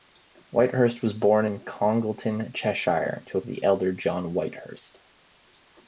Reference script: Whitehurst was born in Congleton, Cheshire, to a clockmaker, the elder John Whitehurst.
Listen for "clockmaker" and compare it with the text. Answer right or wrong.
wrong